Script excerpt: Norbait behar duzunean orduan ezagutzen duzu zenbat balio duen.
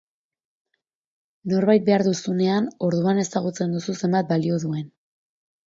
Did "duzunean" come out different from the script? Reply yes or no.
no